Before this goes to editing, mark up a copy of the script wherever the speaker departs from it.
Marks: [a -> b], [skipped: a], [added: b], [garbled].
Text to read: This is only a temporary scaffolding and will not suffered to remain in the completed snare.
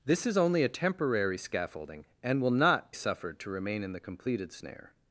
This is only a temporary scaffolding and will not suffered to remain in the completed snare.